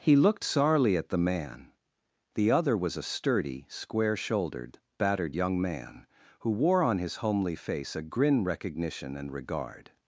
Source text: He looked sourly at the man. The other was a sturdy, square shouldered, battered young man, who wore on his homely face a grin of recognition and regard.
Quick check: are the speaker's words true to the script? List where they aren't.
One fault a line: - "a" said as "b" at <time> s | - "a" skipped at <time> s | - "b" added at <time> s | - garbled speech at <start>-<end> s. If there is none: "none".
- "of" skipped at 8.4 s